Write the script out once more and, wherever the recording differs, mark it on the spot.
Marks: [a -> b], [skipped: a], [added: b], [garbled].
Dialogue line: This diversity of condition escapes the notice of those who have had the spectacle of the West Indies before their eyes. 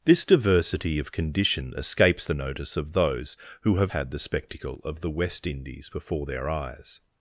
This diversity of condition escapes the notice of those who have had the spectacle of the West Indies before their eyes.